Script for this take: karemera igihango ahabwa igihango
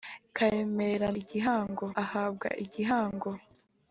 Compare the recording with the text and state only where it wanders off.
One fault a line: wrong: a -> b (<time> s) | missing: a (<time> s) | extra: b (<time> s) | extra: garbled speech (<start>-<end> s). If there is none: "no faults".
no faults